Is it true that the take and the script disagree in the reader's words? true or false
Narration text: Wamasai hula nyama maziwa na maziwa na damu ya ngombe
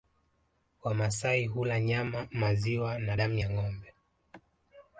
true